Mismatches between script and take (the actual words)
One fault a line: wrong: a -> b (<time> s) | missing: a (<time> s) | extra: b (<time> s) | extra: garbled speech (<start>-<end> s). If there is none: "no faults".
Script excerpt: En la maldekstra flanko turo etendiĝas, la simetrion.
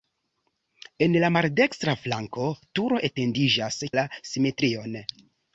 no faults